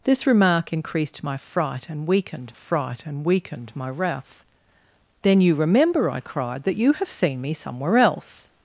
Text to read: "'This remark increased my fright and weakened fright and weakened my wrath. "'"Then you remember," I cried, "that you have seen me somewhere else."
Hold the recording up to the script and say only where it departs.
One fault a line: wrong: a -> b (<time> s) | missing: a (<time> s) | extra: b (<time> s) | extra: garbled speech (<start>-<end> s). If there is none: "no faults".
no faults